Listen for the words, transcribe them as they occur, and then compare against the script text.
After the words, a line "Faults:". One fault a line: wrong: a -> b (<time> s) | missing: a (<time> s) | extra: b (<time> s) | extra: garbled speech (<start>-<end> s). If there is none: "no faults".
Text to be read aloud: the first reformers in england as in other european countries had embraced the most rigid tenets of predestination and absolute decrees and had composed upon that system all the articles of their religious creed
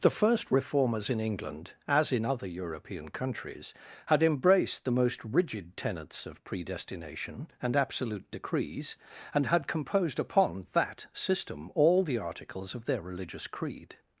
the first reformers in england as in other european countries had embraced the most rigid tenets of predestination and absolute decrees and had composed upon that system all the articles of their religious creed
Faults:
no faults